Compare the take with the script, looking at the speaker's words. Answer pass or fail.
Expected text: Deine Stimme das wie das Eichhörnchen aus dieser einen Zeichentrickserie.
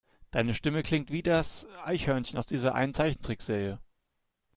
fail